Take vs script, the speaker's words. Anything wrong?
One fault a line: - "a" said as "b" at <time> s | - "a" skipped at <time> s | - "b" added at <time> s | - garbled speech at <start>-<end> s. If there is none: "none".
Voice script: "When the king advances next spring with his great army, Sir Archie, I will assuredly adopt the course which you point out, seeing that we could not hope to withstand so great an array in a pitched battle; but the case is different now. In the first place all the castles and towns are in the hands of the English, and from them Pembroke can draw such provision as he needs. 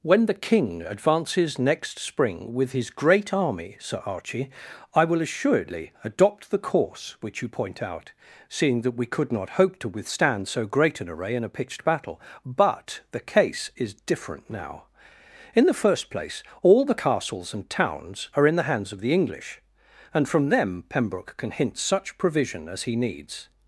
- "draw" said as "hint" at 21.5 s